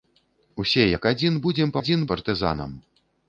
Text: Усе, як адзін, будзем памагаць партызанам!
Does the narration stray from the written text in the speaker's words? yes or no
yes